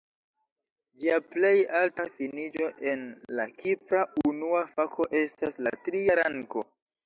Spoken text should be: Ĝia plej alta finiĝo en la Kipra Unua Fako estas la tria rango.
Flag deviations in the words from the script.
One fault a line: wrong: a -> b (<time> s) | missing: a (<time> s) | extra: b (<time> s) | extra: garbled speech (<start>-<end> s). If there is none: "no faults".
no faults